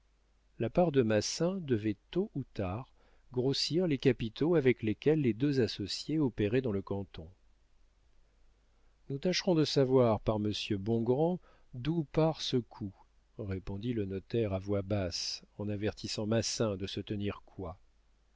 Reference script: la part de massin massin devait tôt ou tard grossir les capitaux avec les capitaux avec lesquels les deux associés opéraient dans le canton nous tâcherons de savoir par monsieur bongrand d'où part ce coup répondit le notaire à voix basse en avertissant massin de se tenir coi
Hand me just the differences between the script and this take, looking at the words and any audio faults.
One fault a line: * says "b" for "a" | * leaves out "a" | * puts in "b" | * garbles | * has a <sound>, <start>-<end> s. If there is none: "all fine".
* leaves out "massin"
* leaves out "les capitaux avec"